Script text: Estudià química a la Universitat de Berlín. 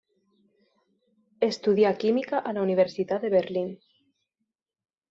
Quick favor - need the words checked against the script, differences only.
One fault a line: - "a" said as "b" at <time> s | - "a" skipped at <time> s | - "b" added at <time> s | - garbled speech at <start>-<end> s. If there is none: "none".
none